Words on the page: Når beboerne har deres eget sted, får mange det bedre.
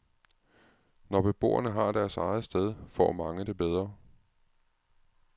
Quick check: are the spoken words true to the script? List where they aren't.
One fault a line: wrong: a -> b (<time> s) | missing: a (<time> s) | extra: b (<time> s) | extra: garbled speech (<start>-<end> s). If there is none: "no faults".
no faults